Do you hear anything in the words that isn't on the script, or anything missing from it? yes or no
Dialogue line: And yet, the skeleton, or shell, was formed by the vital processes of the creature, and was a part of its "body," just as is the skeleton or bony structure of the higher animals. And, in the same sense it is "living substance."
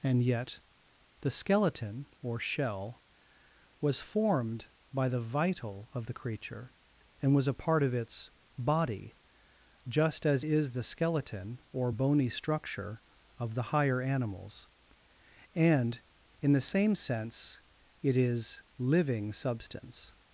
yes